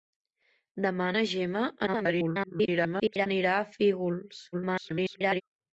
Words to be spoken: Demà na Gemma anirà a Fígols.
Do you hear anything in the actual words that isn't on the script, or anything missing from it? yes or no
yes